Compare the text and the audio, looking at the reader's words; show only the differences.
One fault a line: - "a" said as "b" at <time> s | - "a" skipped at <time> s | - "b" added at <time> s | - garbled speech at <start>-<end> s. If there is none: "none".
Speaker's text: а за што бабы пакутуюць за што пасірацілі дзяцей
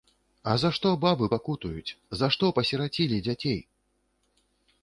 none